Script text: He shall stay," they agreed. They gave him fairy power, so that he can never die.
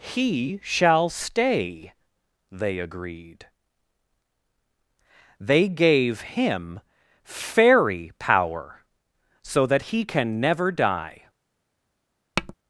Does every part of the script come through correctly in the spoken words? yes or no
yes